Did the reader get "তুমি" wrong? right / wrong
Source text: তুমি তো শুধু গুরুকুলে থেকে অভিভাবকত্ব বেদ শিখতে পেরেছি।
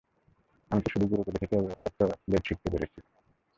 wrong